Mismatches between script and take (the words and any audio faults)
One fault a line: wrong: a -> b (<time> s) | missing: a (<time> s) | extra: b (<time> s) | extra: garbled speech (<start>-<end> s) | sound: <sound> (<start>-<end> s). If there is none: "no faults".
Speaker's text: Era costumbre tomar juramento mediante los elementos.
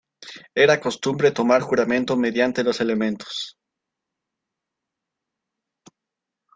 no faults